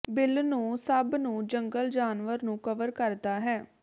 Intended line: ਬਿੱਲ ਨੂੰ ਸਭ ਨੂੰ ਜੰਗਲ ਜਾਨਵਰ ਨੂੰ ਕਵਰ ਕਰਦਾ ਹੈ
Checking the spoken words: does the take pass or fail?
pass